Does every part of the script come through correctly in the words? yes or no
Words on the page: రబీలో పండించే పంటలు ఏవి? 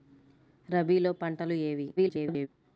no